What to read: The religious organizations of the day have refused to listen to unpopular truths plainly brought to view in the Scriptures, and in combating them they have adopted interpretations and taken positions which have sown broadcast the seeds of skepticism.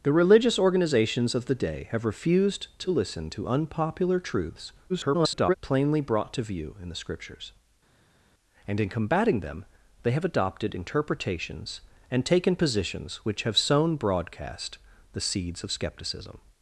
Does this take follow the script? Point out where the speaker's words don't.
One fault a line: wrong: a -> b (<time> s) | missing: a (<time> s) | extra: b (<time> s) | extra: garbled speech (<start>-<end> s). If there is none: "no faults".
extra: garbled speech (4.9-5.5 s)